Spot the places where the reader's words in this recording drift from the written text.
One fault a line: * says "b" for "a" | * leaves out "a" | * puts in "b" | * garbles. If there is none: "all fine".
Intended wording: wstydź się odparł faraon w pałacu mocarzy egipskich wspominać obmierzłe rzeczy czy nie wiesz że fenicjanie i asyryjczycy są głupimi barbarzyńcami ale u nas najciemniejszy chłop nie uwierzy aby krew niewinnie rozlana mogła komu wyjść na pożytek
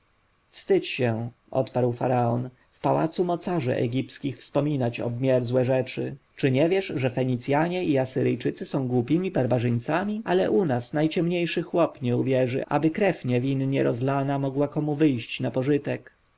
all fine